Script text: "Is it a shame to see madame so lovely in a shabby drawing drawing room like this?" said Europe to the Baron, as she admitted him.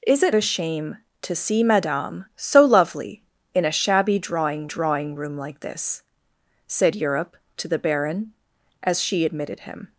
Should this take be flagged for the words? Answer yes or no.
no